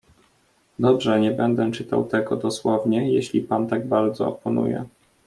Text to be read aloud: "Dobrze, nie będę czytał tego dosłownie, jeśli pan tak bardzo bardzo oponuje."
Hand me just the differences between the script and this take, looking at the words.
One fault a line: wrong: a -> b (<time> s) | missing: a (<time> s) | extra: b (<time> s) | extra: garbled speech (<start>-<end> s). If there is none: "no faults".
missing: bardzo (4.3 s)